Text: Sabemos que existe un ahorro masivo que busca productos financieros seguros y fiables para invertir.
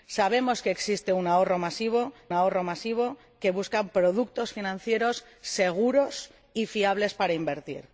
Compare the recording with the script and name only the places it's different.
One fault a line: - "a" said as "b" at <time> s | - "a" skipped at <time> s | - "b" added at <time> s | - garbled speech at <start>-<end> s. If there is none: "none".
- "ahorro masivo" added at 2.3 s